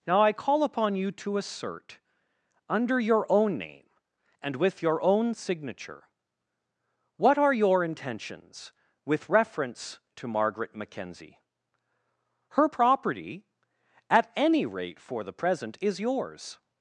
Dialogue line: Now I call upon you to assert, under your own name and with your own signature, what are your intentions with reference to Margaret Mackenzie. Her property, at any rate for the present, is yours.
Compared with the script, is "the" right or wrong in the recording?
right